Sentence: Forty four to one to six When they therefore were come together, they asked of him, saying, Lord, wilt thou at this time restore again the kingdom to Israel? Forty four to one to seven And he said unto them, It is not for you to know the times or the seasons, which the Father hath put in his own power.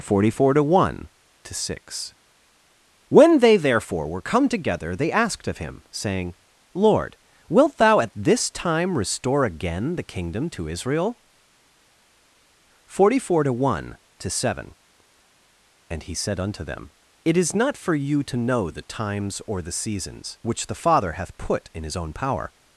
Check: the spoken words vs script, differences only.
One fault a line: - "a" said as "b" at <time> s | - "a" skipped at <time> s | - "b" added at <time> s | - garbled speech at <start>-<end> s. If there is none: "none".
none